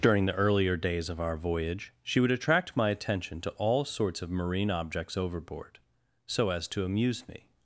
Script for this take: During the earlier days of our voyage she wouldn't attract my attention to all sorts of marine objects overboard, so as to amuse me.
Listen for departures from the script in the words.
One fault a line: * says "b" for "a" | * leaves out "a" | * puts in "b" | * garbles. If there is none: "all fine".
* says "would" for "wouldn't"